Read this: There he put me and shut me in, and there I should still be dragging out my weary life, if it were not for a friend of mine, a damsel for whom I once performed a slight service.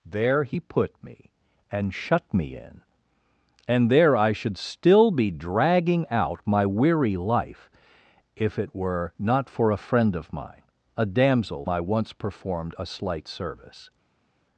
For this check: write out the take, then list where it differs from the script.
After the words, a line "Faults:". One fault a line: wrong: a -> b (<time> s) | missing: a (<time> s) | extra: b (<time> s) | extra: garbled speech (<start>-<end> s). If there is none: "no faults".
There he put me and shut me in, and there I should still be dragging out my weary life, if it were not for a friend of mine, a damsel I once performed a slight service.
Faults:
missing: for whom (11.7 s)